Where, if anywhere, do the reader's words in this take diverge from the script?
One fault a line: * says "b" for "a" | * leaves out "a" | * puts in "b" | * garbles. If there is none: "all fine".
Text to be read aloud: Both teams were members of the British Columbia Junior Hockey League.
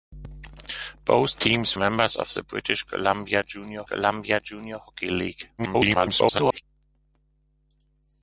* leaves out "were"
* puts in "Columbia Junior"
* garbles